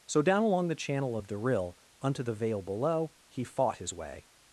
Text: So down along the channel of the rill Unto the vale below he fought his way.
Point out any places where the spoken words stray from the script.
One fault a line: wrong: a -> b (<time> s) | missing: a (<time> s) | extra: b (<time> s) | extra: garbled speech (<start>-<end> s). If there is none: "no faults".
no faults